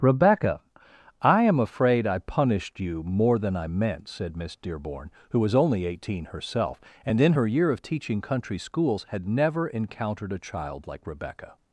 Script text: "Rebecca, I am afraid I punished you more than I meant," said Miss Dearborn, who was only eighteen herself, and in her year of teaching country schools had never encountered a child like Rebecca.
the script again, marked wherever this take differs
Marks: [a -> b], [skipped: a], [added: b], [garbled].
"Rebecca, I am afraid I punished you more than I meant," said Miss Dearborn, who was only eighteen herself, and in her year of teaching country schools had never encountered a child like Rebecca.